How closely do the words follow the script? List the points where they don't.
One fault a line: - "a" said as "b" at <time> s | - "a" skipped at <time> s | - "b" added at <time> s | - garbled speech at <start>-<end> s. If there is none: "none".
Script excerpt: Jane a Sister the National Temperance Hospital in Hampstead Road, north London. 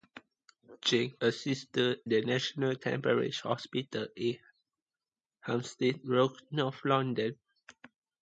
none